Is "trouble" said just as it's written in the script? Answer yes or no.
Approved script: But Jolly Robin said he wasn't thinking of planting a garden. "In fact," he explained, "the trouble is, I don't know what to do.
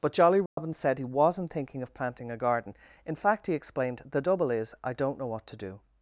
no